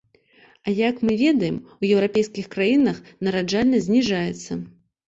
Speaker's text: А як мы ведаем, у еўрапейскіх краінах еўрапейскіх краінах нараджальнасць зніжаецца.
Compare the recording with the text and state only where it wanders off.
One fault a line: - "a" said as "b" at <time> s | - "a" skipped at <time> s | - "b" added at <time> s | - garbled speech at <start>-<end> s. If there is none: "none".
- "еўрапейскіх краінах" skipped at 3.0 s